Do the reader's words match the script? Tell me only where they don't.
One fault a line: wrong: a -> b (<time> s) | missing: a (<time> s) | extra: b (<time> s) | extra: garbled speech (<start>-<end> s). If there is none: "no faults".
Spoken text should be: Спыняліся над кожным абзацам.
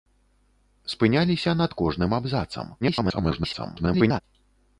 extra: garbled speech (2.8-4.2 s)